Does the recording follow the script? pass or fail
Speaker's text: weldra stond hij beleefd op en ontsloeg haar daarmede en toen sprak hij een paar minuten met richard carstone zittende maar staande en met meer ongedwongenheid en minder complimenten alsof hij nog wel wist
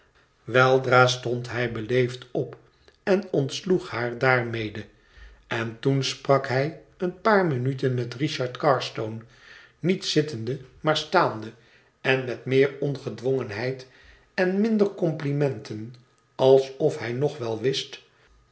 fail